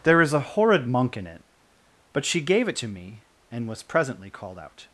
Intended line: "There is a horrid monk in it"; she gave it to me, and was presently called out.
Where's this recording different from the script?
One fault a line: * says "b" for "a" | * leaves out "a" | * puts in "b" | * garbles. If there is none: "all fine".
* puts in "but"